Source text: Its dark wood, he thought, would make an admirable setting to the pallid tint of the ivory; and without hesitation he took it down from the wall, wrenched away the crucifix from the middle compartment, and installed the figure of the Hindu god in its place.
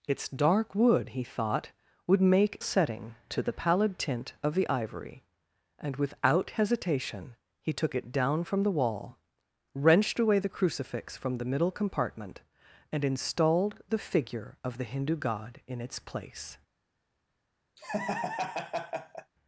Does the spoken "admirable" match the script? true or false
false